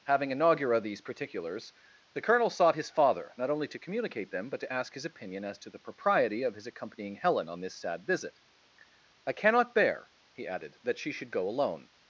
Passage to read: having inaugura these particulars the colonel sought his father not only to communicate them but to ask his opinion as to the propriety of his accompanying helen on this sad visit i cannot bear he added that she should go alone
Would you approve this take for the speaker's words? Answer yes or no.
yes